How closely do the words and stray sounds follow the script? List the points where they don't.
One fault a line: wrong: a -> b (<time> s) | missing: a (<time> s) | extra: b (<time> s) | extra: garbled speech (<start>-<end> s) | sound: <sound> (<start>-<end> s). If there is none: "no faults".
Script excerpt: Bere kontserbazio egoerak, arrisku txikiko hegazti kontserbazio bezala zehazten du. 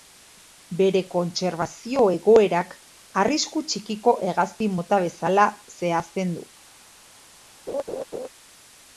wrong: kontserbazio -> mota (4.8 s)
sound: laugh (7.7-8.3 s)